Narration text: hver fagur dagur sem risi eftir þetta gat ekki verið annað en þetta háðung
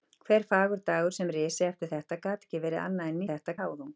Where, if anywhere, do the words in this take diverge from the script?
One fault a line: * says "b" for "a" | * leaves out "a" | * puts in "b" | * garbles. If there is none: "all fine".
all fine